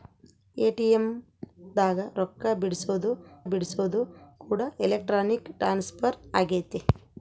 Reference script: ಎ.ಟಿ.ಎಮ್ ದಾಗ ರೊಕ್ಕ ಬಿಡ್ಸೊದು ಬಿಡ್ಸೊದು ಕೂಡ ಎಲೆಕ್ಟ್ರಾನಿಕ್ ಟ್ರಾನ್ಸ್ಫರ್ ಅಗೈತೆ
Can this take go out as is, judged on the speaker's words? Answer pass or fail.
pass